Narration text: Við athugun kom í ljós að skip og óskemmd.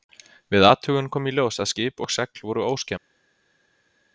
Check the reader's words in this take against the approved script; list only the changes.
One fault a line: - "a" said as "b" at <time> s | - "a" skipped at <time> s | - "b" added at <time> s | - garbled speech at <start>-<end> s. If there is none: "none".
- "segl voru" added at 2.2 s